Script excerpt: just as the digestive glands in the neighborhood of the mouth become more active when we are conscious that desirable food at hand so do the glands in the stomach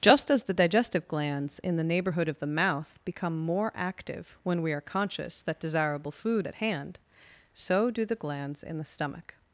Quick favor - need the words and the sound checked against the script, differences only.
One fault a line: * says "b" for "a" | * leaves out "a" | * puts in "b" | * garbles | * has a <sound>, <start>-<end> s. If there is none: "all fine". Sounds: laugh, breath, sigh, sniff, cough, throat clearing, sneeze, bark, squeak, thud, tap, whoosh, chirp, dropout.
all fine